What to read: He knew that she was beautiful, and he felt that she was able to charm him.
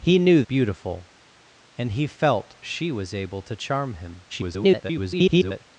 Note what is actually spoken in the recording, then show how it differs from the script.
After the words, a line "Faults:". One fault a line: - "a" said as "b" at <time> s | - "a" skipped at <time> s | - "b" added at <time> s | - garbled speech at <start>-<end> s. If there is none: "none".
He knew beautiful, and he felt she was able to charm him. [garbled]
Faults:
- "that she was" skipped at 0.4 s
- "that" skipped at 2.6 s
- garbled speech at 4.3-5.6 s